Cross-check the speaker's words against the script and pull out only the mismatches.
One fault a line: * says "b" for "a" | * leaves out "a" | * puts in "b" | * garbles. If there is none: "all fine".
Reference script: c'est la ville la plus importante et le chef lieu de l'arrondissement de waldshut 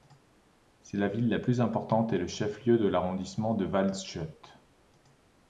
all fine